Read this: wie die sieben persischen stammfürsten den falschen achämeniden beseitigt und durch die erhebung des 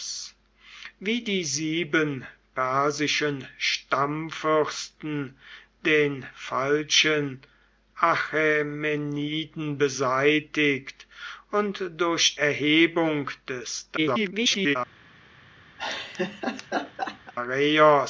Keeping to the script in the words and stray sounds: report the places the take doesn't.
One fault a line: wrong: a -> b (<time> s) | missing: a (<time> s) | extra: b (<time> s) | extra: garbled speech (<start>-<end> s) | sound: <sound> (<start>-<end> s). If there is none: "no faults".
missing: die (12.4 s)
extra: garbled speech (14.0-14.8 s)
sound: laugh (15.8-17.3 s)